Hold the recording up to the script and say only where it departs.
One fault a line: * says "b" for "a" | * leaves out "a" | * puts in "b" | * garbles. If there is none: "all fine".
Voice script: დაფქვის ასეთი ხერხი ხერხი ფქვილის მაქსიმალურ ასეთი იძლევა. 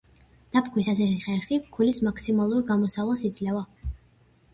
* leaves out "ხერხი"
* says "გამოსავალს" for "ასეთი"